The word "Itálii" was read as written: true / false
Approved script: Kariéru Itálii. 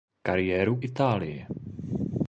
true